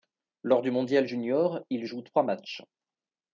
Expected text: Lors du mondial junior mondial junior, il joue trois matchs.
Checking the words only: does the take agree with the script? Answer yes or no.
no